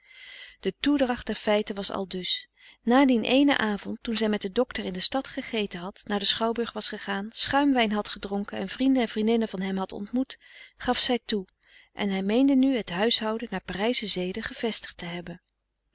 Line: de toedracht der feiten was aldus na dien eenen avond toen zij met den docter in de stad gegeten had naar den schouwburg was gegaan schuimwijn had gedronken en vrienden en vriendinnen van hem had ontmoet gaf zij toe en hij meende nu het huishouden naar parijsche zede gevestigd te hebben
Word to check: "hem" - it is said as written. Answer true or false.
true